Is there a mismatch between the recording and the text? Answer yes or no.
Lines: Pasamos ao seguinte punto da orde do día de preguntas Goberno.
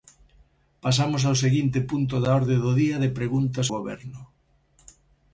no